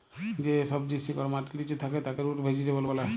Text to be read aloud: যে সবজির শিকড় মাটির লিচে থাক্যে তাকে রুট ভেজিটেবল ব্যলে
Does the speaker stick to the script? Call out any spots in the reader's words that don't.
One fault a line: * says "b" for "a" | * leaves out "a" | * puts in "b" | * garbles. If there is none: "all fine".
all fine